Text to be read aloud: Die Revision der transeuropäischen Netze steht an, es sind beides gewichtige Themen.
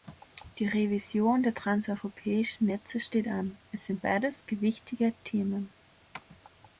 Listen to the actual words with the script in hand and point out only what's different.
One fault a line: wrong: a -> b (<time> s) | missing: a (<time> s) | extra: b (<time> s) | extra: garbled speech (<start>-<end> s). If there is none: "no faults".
no faults